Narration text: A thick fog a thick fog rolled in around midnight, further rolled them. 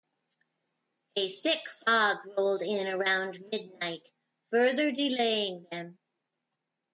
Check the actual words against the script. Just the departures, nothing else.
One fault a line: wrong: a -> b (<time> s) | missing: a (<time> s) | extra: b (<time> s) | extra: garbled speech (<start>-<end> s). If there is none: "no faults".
missing: a thick fog (2.2 s)
wrong: rolled -> delaying (4.9 s)